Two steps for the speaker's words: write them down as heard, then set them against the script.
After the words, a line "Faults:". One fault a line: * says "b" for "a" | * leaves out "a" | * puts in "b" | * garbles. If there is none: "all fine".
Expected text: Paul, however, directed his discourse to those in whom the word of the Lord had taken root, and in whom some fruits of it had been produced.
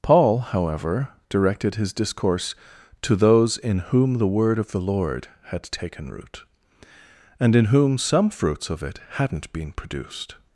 Paul, however, directed his discourse to those in whom the word of the Lord had taken root, and in whom some fruits of it hadn't been produced.
Faults:
* says "hadn't" for "had"